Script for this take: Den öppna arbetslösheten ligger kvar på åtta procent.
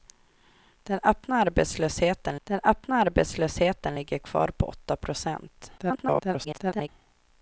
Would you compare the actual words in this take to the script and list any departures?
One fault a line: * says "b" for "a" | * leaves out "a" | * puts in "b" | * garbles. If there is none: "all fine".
* puts in "den öppna arbetslösheten"
* garbles